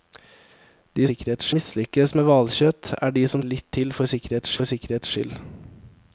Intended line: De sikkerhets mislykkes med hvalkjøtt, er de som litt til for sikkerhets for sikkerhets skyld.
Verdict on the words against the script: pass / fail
pass